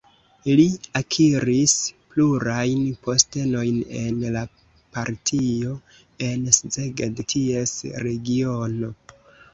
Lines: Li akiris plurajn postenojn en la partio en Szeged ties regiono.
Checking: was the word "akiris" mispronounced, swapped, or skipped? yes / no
no